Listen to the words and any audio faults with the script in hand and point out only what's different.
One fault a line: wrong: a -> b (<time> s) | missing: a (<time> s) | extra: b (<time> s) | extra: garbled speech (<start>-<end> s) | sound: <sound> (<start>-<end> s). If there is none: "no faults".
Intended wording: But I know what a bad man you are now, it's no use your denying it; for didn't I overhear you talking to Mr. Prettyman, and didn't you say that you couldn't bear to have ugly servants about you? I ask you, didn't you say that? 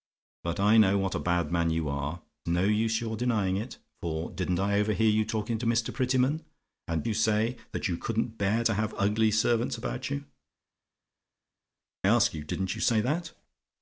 missing: now it's (2.2 s)
missing: didn't (7.0 s)
missing: I (10.2 s)